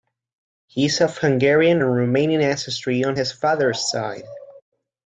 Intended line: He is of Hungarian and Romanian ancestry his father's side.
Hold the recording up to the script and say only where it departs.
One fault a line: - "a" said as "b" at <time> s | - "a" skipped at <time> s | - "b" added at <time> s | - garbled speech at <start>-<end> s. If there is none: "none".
- "on" added at 3.0 s